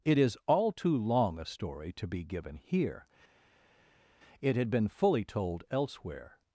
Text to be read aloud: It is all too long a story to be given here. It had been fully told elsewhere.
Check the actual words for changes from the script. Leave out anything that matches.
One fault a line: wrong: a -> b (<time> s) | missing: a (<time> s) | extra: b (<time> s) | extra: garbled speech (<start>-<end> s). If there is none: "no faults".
no faults